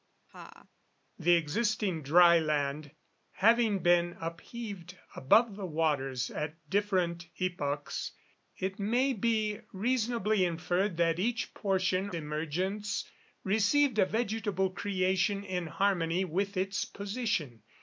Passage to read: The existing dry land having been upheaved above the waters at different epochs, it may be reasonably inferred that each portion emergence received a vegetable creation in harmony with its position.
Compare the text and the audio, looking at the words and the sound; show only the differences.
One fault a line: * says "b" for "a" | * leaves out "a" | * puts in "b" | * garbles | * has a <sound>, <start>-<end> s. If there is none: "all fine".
* has a laugh, 0.3-0.7 s